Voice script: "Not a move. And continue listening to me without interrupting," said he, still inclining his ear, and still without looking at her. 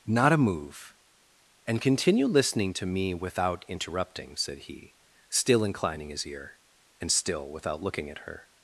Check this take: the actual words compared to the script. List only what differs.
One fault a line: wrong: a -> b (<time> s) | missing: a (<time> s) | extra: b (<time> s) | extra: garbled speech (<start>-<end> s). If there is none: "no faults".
no faults